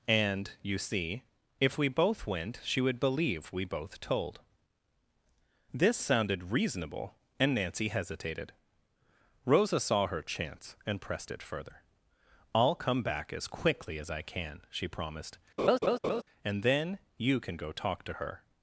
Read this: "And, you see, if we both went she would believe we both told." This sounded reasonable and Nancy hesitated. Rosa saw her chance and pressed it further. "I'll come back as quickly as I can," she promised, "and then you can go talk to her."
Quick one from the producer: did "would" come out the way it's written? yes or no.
yes